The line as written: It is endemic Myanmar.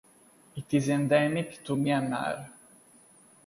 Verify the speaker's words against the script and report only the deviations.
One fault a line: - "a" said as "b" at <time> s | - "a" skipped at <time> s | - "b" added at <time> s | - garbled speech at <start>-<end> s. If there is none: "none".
- "to" added at 1.6 s